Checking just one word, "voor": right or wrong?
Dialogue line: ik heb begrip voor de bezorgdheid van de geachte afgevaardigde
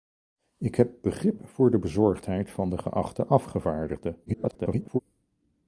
right